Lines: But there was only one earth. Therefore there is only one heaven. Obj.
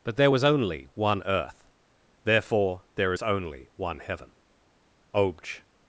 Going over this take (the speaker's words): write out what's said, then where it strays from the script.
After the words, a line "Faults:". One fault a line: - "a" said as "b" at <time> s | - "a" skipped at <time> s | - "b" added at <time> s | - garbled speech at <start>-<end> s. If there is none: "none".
But there was only one earth. Therefore there is only one heaven. Obj.
Faults:
none